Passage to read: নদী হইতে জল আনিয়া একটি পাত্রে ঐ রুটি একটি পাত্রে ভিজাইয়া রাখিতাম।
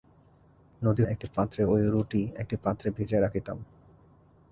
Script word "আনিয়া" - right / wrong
wrong